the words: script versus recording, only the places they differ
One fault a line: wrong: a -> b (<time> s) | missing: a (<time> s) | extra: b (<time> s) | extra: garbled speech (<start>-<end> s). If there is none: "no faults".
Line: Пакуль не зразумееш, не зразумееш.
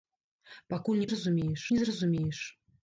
no faults